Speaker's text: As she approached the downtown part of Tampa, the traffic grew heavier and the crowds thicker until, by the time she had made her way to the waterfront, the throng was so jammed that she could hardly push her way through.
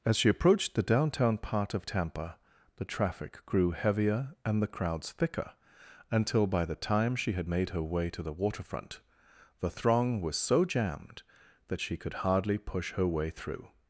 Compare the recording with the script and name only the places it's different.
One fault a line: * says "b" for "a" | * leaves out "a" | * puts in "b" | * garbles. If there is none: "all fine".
all fine